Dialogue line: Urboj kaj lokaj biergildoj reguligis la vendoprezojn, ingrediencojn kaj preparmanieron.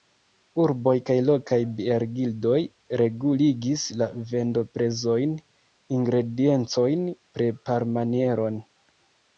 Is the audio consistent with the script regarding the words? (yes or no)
no